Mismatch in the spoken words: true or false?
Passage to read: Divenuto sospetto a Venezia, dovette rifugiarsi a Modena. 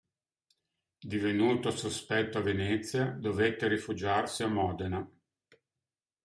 false